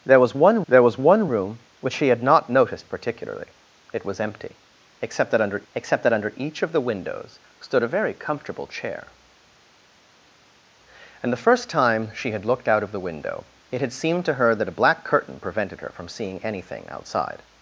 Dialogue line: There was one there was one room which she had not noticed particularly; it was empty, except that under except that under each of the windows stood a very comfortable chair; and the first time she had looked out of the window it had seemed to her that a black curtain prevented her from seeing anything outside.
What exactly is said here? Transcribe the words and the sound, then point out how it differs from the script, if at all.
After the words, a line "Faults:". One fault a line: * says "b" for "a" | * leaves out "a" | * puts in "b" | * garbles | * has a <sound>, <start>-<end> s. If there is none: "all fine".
There was one there was one room which she had not noticed particularly; it was empty, except that under except that under each of the windows stood a very comfortable chair; and the first time she had looked out of the window it had seemed to her that a black curtain prevented her from seeing anything outside.
Faults:
all fine